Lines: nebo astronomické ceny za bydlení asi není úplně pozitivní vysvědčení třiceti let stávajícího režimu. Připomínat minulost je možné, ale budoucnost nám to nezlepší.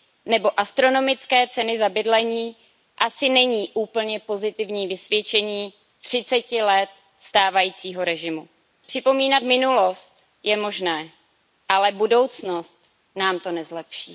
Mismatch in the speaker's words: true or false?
false